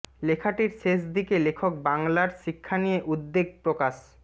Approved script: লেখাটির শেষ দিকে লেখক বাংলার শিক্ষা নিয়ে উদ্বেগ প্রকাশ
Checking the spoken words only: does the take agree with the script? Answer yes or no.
yes